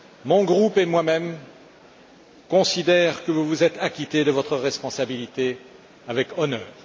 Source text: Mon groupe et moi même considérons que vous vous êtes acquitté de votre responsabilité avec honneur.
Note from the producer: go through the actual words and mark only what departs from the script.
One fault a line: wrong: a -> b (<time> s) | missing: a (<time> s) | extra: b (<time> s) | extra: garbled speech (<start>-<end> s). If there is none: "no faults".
no faults